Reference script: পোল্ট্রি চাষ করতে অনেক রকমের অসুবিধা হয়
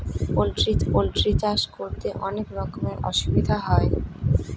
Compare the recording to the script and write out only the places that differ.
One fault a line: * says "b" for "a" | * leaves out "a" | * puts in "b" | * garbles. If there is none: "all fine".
* puts in "পোল্ট্রি"